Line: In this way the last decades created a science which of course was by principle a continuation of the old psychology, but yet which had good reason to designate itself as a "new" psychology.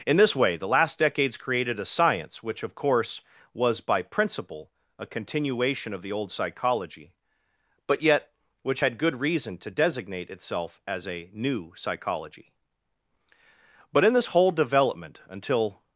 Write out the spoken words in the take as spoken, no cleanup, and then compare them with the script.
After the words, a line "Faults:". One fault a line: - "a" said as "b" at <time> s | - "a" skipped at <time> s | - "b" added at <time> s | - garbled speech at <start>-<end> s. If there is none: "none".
In this way the last decades created a science which of course was by principle a continuation of the old psychology, but yet which had good reason to designate itself as a "new" psychology. But in this whole development, until
Faults:
- "But in this whole development until" added at 13.9 s